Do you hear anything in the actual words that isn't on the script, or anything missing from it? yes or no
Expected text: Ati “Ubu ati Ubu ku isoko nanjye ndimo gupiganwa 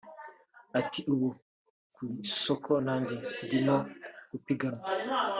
yes